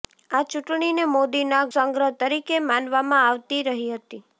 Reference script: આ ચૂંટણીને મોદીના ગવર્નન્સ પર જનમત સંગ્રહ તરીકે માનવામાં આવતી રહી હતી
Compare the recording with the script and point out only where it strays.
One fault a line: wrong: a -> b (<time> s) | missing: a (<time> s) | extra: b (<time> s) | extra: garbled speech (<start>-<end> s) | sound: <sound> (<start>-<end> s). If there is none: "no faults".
missing: ગવર્નન્સ પર જનમત (1.6 s)